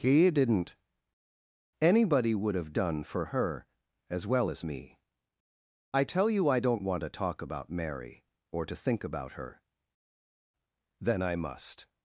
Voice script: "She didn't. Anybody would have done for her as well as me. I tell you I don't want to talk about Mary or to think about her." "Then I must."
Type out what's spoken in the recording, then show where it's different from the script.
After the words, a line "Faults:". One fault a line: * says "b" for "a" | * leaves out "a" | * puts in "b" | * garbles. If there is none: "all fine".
"He didn't. Anybody would have done for her as well as me. I tell you I don't want to talk about Mary or to think about her." "Then I must."
Faults:
* says "He" for "She"